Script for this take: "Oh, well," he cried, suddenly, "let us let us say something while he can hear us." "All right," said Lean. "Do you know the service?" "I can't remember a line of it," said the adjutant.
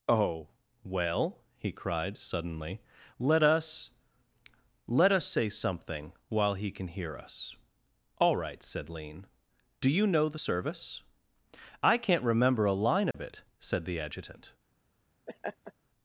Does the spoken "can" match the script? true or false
true